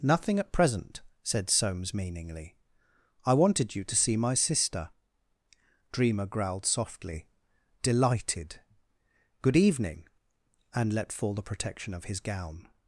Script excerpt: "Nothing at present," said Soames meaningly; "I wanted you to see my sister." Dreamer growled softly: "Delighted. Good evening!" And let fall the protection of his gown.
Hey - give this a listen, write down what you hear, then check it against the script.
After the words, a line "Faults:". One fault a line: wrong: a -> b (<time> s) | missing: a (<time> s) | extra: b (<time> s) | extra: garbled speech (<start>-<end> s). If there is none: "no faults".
"Nothing at present," said Soames meaningly; "I wanted you to see my sister." Dreamer growled softly: "Delighted. Good evening!" And let fall the protection of his gown.
Faults:
no faults